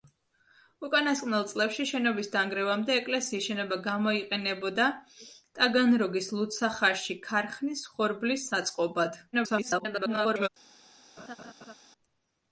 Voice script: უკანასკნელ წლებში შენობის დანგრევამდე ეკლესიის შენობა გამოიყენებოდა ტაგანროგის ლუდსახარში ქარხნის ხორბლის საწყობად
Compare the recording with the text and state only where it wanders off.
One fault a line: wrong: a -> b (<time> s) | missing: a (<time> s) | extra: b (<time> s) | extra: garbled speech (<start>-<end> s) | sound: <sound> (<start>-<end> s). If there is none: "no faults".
extra: garbled speech (9.3-10.5 s)
sound: laugh (11.2-11.7 s)